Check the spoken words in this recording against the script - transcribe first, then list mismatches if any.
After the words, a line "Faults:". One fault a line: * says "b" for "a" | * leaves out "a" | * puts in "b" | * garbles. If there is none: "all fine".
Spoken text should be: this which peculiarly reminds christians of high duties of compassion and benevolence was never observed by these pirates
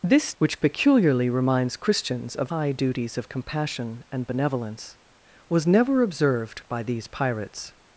this which peculiarly reminds christians of high duties of compassion and benevolence was never observed by these pirates
Faults:
all fine